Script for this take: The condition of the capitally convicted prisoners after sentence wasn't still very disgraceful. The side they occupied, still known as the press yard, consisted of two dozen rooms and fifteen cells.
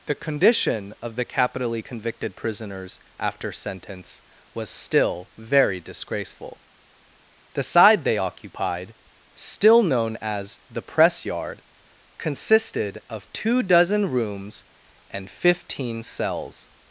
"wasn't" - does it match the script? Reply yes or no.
no